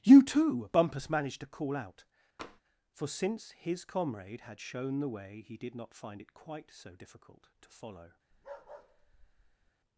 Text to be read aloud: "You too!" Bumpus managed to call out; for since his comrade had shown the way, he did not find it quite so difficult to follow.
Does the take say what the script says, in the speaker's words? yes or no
yes